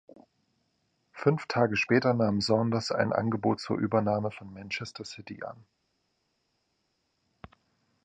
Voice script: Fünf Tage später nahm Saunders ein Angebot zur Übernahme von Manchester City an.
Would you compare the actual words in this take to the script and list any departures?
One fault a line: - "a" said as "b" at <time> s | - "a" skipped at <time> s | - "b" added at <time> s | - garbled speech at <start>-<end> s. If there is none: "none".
none